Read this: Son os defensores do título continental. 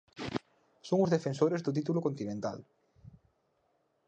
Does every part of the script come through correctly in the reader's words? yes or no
yes